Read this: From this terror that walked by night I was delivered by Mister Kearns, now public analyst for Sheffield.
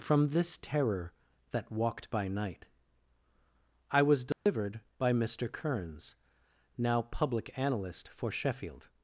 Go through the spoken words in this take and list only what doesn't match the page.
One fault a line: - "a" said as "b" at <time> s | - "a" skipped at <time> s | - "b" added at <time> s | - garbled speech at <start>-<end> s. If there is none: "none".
none